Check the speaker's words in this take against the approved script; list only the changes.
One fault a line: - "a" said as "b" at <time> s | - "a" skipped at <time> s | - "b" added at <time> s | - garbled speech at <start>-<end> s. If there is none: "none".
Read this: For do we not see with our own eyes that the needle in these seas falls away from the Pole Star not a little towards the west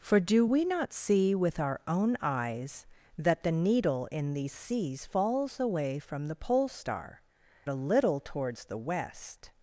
- "not" skipped at 7.2 s